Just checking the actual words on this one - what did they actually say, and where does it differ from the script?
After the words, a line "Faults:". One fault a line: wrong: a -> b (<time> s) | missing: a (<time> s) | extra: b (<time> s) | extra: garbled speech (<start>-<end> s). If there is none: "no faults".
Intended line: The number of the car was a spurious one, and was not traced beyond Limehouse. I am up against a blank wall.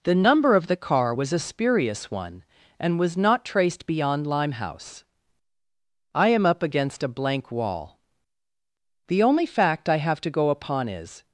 The number of the car was a spurious one, and was not traced beyond Limehouse. I am up against a blank wall. The only fact I have to go upon is
Faults:
extra: The only fact I have to go upon is (9.1 s)